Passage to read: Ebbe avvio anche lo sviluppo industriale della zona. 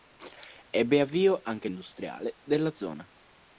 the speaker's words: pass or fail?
fail